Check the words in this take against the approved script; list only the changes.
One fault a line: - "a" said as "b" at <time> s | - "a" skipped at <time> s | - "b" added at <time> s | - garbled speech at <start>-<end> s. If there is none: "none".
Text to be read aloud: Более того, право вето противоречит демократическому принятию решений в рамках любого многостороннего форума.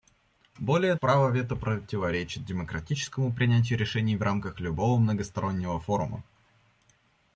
- "того" skipped at 0.9 s